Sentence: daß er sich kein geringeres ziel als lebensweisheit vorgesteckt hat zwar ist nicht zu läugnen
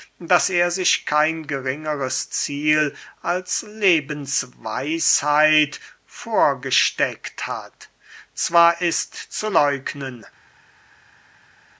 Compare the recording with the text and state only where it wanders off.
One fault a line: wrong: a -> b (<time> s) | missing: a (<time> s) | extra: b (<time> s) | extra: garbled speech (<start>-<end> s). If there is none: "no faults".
missing: nicht (9.2 s)